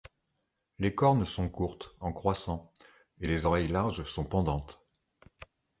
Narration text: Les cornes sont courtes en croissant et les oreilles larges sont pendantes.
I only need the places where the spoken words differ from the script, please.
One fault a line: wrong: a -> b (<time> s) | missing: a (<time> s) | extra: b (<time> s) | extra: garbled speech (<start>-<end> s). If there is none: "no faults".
no faults